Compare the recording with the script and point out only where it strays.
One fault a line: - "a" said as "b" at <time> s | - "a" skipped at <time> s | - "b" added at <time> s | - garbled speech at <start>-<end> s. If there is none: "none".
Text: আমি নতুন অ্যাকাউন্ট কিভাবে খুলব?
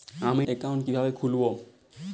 - "নতুন" skipped at 0.4 s